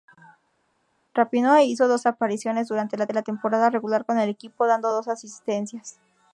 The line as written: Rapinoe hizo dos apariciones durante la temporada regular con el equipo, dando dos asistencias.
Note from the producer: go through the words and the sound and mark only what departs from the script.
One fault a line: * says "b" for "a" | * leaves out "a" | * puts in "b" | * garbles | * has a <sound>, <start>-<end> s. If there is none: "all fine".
* puts in "la"